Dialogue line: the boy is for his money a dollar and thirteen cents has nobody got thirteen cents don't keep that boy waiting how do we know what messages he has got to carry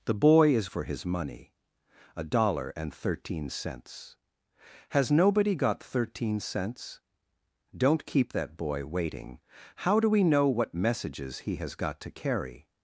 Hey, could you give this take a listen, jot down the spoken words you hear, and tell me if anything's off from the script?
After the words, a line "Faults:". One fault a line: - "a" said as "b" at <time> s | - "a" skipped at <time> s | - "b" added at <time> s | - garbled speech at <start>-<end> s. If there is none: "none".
the boy is for his money a dollar and thirteen cents has nobody got thirteen cents don't keep that boy waiting how do we know what messages he has got to carry
Faults:
none